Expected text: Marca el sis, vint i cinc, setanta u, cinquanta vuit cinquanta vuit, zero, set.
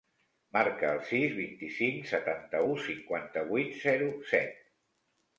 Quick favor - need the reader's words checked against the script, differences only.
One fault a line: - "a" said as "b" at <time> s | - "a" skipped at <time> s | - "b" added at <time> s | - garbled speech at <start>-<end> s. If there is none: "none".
- "cinquanta vuit" skipped at 3.8 s